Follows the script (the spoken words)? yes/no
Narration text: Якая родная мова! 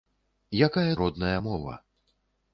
yes